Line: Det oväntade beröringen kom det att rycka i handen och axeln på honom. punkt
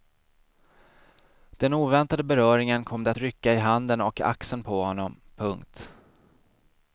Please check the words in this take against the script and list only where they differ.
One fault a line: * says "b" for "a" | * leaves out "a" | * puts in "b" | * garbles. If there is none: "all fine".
* says "Den" for "Det"